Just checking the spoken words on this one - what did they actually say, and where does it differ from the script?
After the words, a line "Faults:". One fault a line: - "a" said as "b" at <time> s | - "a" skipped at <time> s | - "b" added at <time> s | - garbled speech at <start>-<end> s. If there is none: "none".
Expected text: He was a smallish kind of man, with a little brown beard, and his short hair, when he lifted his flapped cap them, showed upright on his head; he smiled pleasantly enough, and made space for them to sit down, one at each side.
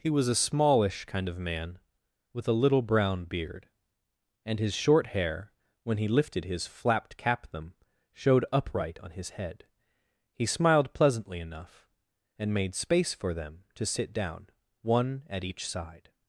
He was a smallish kind of man, with a little brown beard, and his short hair, when he lifted his flapped cap them, showed upright on his head; he smiled pleasantly enough, and made space for them to sit down, one at each side.
Faults:
none